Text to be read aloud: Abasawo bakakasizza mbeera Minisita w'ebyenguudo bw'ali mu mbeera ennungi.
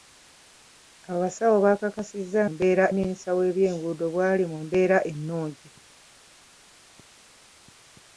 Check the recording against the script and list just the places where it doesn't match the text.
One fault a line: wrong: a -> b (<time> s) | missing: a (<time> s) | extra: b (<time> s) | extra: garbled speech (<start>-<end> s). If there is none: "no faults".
no faults